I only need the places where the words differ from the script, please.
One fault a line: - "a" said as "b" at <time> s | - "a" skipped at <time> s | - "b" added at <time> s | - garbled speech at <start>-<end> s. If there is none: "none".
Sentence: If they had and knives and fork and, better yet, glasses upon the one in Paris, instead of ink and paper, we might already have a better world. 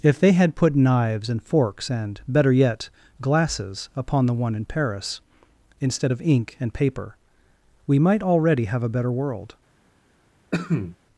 - "and" said as "put" at 0.6 s
- "fork" said as "forks" at 1.4 s